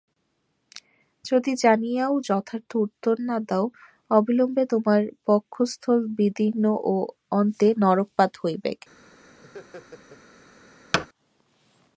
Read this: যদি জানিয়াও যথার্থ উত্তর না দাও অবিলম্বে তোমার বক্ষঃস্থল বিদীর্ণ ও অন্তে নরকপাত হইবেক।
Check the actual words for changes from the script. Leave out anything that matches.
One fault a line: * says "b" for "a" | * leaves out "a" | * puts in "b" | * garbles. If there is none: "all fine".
all fine